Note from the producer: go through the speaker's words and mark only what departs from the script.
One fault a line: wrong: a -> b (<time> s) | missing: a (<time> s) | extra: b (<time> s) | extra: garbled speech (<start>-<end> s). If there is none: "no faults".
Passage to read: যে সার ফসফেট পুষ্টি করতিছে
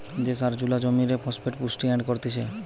extra: জুলা জমিরে (0.6 s)
extra: এড (1.9 s)